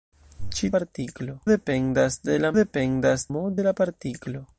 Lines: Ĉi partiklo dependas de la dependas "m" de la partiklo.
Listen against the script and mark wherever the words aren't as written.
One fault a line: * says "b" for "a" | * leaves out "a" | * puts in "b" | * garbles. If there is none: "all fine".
all fine